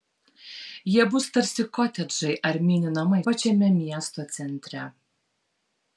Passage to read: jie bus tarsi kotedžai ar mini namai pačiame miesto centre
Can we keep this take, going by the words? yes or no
yes